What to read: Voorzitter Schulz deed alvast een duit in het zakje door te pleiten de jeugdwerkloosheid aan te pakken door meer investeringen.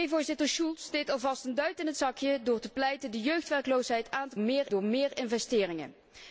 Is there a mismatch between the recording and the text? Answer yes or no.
yes